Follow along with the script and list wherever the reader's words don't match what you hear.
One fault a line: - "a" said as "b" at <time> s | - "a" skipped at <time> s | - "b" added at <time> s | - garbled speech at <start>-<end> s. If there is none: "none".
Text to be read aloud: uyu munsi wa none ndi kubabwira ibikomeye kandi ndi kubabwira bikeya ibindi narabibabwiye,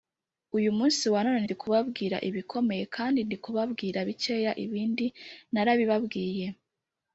none